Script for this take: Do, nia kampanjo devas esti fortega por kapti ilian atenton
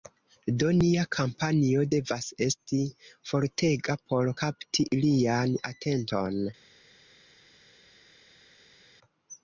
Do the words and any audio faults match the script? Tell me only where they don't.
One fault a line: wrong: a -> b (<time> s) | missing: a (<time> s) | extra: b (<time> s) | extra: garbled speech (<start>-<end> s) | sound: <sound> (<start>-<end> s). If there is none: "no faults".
no faults